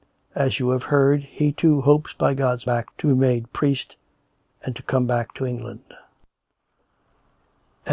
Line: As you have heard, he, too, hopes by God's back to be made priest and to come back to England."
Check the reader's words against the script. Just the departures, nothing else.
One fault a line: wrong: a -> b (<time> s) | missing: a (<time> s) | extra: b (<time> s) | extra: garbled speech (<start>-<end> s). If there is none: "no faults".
no faults